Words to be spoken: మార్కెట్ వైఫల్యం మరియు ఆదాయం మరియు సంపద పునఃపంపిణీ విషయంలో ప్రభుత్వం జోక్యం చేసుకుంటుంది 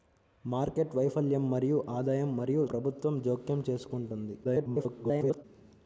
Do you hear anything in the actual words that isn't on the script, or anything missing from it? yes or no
yes